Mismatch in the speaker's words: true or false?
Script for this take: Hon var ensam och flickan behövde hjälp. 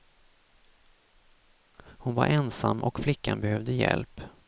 false